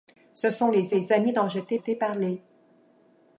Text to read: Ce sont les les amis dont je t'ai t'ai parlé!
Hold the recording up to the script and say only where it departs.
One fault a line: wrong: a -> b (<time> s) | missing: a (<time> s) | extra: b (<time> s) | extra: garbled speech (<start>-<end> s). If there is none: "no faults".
no faults